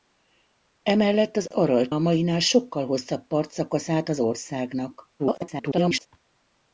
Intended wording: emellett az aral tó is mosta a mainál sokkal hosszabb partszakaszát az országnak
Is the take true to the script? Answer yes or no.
no